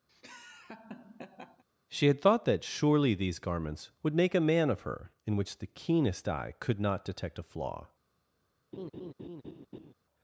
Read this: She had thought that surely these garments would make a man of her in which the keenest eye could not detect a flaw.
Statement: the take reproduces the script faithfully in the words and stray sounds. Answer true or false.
false